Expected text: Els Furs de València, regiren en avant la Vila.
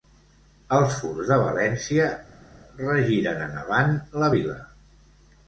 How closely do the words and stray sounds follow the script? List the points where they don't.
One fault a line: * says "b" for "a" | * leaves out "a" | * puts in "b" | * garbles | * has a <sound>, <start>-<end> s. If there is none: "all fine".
all fine